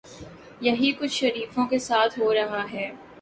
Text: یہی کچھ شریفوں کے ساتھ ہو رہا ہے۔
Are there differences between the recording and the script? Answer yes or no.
no